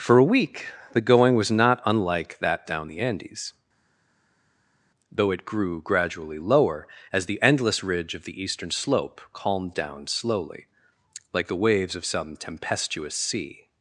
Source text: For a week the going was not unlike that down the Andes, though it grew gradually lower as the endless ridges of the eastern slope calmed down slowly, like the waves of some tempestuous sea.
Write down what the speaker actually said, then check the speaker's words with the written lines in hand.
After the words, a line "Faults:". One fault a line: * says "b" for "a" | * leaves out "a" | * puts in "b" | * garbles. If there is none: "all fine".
For a week the going was not unlike that down the Andes, though it grew gradually lower as the endless ridge of the eastern slope calmed down slowly, like the waves of some tempestuous sea.
Faults:
* says "ridge" for "ridges"